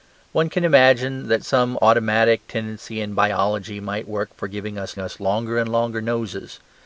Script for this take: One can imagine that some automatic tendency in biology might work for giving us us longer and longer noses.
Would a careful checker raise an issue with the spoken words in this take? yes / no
no